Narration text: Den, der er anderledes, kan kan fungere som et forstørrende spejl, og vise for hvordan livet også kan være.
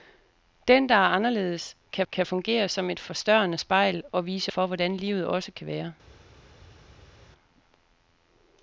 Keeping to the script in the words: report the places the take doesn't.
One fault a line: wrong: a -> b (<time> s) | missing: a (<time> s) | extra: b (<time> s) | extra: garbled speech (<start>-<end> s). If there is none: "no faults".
no faults